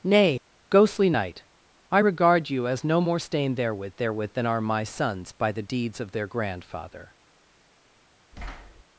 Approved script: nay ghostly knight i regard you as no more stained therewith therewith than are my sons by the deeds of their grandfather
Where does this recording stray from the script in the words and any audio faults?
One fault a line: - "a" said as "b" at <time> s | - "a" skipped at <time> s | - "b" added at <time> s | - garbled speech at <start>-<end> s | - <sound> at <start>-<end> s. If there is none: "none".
- thud at 8.3-8.8 s